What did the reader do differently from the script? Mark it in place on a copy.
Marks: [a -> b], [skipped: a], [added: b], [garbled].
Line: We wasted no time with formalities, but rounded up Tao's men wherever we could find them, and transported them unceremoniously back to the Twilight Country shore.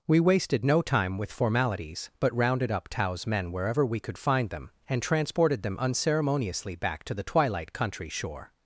We wasted no time with formalities, but rounded up Tao's men wherever we could find them, and transported them unceremoniously back to the Twilight Country shore.